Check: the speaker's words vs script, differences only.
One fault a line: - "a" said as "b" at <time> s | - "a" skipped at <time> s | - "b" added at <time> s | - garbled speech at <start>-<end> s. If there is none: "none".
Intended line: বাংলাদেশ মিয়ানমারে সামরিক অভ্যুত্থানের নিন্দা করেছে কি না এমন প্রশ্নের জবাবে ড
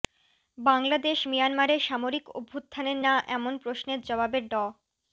- "নিন্দা করেছে কি" skipped at 3.0 s